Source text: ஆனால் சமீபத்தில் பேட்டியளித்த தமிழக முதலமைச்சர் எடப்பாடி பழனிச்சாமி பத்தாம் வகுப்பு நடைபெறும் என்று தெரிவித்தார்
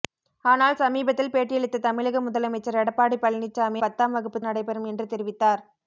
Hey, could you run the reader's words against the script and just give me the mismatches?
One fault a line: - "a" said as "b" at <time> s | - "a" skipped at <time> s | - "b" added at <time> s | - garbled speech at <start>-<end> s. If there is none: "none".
none